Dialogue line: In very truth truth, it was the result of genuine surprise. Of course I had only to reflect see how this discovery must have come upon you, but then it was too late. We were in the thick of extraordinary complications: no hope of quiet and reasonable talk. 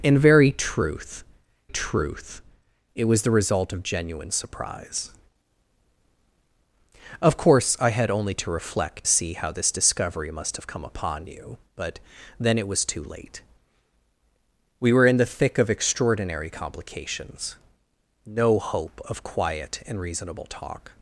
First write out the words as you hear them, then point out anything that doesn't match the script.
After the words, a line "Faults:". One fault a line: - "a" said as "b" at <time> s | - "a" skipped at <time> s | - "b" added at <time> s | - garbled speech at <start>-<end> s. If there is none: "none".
In very truth truth, it was the result of genuine surprise. Of course I had only to reflect see how this discovery must have come upon you, but then it was too late. We were in the thick of extraordinary complications: no hope of quiet and reasonable talk.
Faults:
none